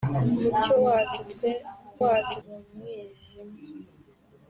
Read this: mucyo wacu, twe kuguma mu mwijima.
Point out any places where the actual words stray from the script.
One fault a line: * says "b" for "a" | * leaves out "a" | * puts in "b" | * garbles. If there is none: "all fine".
* says "wacu" for "kuguma"